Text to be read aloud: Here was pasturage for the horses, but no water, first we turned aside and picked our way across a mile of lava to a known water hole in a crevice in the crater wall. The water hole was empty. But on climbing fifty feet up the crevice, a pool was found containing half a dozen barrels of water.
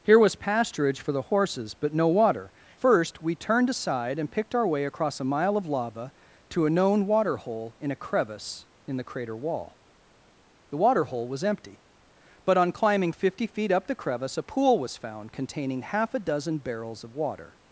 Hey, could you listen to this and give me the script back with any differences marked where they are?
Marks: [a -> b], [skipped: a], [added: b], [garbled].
Here was pasturage for the horses, but no water, first we turned aside and picked our way across a mile of lava to a known water hole in a crevice in the crater wall. The water hole was empty. But on climbing fifty feet up the crevice, a pool was found containing half a dozen barrels of water.